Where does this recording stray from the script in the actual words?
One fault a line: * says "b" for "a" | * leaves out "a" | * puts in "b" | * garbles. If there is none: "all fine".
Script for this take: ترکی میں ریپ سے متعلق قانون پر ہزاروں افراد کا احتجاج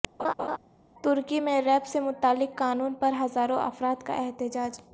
all fine